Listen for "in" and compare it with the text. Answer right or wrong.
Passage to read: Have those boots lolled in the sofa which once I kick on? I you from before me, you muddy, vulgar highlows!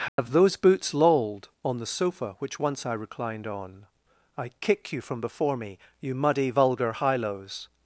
wrong